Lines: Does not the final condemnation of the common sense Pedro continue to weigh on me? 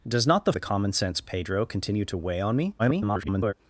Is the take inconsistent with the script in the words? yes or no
yes